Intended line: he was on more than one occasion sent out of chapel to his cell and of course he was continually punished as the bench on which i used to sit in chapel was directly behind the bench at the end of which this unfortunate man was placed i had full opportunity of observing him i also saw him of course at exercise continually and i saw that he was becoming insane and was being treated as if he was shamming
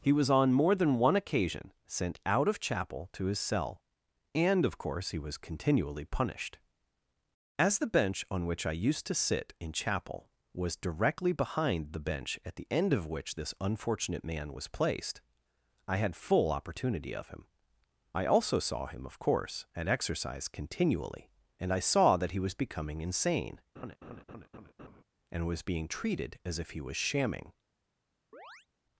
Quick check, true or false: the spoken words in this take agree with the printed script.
false